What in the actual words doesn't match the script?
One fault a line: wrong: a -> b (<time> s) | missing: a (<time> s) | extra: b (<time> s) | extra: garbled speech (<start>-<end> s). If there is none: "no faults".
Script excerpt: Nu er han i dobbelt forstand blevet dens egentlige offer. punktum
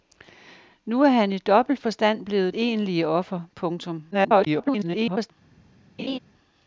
missing: dens (2.5 s)
extra: garbled speech (4.1-5.3 s)